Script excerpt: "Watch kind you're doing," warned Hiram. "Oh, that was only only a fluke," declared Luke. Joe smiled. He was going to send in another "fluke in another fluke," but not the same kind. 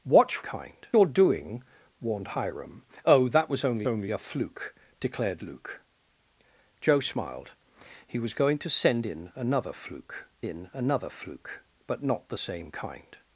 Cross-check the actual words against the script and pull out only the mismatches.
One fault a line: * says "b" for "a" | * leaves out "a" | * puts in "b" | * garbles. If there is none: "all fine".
all fine